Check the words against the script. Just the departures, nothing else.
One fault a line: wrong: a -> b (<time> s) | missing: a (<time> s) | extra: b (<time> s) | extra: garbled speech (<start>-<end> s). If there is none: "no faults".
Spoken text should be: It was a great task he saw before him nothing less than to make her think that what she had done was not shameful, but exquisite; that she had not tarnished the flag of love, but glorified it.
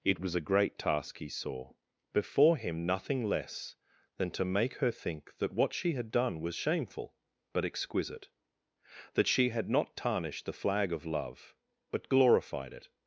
missing: not (6.6 s)